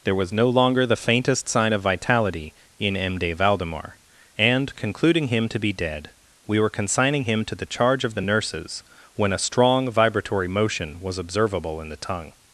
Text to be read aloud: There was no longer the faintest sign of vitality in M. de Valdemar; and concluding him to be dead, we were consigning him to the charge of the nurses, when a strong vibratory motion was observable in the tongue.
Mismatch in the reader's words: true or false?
false